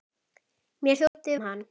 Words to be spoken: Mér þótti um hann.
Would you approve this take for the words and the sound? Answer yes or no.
no